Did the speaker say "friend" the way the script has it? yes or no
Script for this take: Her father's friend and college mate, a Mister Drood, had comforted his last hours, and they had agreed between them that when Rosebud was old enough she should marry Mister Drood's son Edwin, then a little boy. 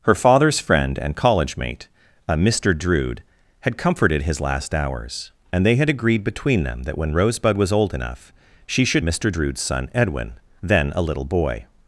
yes